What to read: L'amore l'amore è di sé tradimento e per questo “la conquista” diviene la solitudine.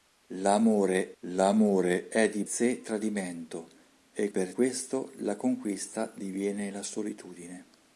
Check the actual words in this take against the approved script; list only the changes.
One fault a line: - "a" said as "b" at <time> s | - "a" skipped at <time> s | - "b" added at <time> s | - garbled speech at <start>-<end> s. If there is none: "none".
none